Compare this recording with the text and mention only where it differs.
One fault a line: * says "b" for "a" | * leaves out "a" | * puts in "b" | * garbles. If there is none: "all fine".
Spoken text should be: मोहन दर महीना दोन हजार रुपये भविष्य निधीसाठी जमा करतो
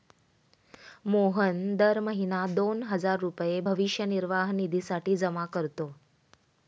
* puts in "निर्वाह"